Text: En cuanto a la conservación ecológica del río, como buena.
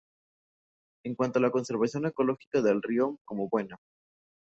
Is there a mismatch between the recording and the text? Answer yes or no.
no